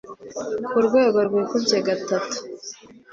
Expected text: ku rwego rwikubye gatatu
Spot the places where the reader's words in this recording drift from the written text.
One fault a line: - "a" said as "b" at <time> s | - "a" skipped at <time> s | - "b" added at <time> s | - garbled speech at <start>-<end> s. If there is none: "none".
none